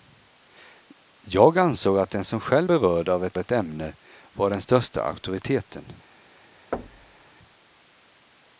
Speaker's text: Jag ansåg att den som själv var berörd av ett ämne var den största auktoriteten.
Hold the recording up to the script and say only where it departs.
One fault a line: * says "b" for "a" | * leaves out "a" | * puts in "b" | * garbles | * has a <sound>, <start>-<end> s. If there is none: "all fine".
* leaves out "var"
* puts in "ett"
* has a thud, 6.7-7.3 s